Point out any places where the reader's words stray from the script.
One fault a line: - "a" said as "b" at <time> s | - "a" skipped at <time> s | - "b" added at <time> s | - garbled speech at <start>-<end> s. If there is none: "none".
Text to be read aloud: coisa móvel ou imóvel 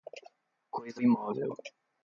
- "móvel ou" skipped at 1.0 s